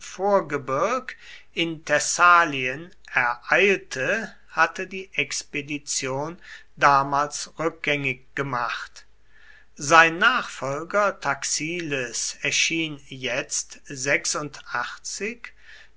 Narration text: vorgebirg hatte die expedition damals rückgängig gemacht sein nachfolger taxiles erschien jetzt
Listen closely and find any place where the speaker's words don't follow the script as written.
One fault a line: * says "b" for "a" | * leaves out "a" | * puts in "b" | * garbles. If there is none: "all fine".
* puts in "in thessalien ereilte"